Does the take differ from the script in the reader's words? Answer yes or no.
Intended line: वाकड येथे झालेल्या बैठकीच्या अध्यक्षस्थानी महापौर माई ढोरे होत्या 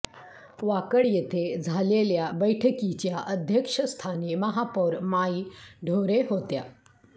no